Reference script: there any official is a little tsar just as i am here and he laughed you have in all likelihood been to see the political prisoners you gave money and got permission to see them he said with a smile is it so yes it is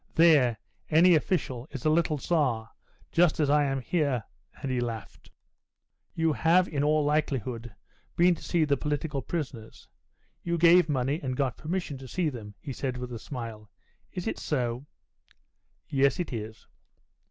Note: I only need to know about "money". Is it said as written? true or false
true